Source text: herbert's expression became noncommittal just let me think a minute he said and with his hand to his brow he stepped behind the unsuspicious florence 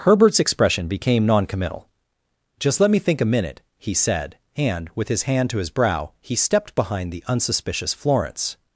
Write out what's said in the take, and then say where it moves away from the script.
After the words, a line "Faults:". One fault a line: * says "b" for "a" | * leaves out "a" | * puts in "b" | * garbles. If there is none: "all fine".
herbert's expression became noncommittal just let me think a minute he said and with his hand to his brow he stepped behind the unsuspicious florence
Faults:
all fine